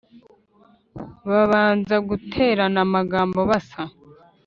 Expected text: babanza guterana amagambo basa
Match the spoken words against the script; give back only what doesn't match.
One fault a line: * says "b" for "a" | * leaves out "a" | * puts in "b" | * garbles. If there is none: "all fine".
all fine